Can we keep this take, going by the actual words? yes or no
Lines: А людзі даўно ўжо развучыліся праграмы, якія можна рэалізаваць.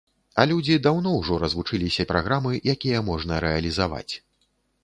yes